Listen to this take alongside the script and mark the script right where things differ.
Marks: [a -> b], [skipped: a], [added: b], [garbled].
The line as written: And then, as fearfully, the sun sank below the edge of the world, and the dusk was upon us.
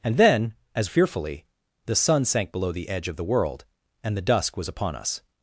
And then, as fearfully, the sun sank below the edge of the world, and the dusk was upon us.